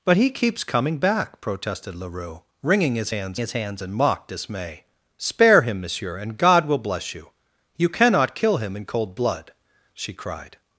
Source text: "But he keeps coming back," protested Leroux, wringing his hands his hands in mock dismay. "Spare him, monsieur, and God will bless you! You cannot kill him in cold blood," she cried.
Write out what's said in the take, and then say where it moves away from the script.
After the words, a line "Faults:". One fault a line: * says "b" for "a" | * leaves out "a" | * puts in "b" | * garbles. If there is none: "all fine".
"But he keeps coming back," protested Leroux, wringing his hands his hands in mock dismay. "Spare him, monsieur, and God will bless you! You cannot kill him in cold blood," she cried.
Faults:
all fine